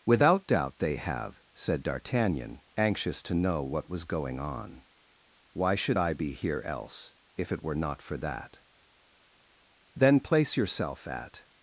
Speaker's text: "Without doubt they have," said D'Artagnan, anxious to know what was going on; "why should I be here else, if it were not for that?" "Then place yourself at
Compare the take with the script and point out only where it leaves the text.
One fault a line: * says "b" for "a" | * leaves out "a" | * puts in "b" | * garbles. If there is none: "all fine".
all fine